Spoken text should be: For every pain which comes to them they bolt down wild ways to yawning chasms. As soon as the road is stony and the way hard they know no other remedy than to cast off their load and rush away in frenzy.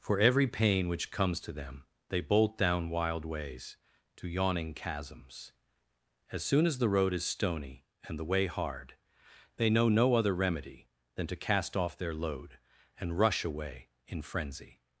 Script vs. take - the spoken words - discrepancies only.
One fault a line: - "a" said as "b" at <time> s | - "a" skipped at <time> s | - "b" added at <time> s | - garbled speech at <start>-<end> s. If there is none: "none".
none